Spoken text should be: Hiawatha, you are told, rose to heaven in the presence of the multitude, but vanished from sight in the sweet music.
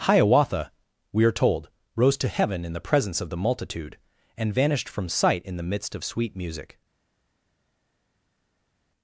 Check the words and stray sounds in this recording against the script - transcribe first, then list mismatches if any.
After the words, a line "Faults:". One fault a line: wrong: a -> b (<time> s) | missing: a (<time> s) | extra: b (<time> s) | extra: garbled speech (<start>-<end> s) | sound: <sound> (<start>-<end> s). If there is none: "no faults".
Hiawatha, we are told, rose to heaven in the presence of the multitude, and vanished from sight in the midst of sweet music.
Faults:
wrong: you -> we (1.1 s)
wrong: but -> and (4.3 s)
extra: midst of (5.7 s)